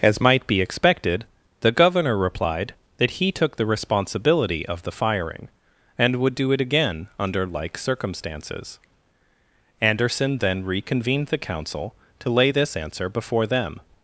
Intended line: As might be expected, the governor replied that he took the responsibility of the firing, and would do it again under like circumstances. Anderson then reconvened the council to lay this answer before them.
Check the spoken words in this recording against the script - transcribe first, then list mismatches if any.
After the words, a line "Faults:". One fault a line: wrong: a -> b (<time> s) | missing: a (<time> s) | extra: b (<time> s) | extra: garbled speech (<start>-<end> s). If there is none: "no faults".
As might be expected, the governor replied that he took the responsibility of the firing, and would do it again under like circumstances. Anderson then reconvened the council to lay this answer before them.
Faults:
no faults